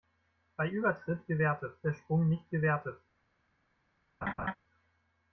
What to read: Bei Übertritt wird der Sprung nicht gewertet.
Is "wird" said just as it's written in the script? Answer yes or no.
no